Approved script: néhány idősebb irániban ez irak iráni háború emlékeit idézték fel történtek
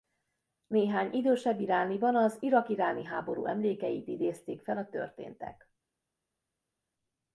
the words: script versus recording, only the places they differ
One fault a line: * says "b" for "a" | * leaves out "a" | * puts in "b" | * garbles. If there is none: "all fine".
* says "az" for "ez"
* puts in "a"